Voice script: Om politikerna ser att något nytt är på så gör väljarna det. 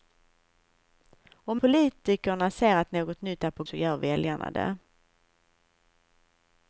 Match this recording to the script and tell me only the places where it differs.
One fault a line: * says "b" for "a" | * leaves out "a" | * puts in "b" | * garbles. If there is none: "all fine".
all fine